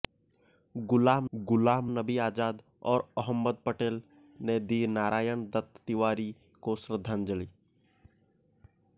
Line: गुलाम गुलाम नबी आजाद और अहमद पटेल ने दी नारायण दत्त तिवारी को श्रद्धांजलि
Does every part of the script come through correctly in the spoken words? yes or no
yes